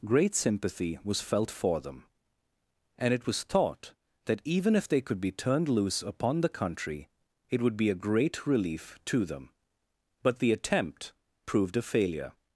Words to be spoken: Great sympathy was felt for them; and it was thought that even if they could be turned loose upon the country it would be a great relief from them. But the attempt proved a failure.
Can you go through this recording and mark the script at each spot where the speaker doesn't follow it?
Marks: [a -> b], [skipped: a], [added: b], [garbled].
Great sympathy was felt for them; and it was thought that even if they could be turned loose upon the country it would be a great relief [from -> to] them. But the attempt proved a failure.